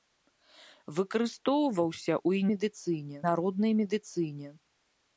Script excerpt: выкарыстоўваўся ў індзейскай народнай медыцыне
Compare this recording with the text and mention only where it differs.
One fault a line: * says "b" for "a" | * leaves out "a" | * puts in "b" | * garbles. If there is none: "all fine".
* says "медыцыне" for "індзейскай"